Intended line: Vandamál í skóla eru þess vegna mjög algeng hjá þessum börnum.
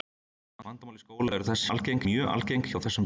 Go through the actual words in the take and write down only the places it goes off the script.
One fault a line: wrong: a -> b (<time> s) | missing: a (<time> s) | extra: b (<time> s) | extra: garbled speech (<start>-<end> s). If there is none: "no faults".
wrong: vegna -> algeng (1.7 s)